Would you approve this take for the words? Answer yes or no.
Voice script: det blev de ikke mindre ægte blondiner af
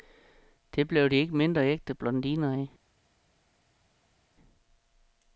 yes